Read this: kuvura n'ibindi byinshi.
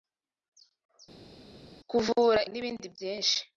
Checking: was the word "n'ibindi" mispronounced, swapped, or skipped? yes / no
no